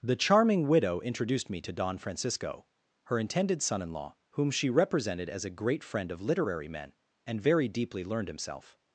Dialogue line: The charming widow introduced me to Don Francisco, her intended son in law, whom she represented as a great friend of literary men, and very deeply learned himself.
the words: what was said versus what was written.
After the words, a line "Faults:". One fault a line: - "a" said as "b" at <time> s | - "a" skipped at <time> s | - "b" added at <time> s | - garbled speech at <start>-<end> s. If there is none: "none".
The charming widow introduced me to Don Francisco, her intended son in law, whom she represented as a great friend of literary men, and very deeply learned himself.
Faults:
none